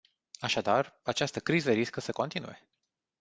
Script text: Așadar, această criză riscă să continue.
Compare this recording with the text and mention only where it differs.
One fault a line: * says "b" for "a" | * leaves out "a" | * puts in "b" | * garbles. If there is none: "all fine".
all fine